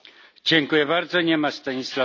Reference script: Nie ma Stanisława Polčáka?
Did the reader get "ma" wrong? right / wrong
right